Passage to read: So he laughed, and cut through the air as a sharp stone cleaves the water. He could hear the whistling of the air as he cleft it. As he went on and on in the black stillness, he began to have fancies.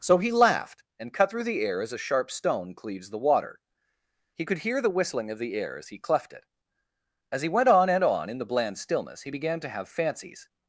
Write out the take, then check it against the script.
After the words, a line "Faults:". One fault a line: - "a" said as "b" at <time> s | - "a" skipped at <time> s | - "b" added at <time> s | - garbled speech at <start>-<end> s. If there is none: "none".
So he laughed, and cut through the air as a sharp stone cleaves the water. He could hear the whistling of the air as he cleft it. As he went on and on in the bland stillness, he began to have fancies.
Faults:
- "black" said as "bland" at 8.4 s